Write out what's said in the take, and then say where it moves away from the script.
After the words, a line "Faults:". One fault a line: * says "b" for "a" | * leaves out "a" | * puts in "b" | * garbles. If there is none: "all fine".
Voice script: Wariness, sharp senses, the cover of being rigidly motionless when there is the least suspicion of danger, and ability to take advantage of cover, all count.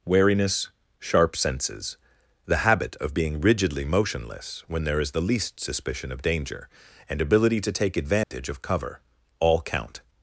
Wariness, sharp senses, the habit of being rigidly motionless when there is the least suspicion of danger, and ability to take advantage of cover, all count.
Faults:
* says "habit" for "cover"